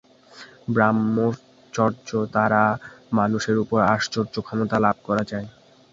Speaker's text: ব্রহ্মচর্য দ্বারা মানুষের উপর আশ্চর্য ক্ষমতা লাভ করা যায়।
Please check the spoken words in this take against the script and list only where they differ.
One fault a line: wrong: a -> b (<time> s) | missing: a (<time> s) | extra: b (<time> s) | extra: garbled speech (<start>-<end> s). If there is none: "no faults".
no faults